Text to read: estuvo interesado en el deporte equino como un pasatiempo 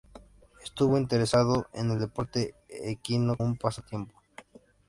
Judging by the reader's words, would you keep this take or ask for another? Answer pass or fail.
fail